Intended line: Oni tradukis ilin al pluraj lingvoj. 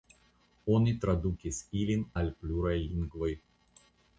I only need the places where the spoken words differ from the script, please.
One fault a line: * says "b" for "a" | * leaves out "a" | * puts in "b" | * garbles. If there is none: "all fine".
all fine